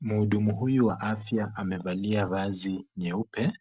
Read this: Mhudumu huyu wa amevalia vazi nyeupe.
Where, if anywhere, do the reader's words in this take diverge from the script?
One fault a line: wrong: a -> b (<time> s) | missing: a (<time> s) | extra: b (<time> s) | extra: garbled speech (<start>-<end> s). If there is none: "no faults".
extra: afya (1.0 s)